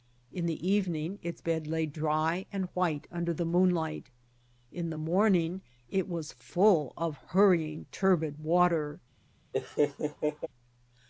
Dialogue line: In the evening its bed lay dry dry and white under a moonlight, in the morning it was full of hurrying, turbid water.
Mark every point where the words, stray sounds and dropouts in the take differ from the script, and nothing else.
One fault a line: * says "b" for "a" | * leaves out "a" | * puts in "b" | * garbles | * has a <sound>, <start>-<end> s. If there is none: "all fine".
* leaves out "dry"
* says "the" for "a"
* has a laugh, 9.5-10.5 s